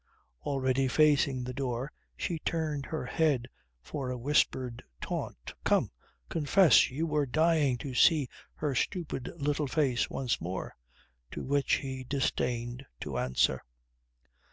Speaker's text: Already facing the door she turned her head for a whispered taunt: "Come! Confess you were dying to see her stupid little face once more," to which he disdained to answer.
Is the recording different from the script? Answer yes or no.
no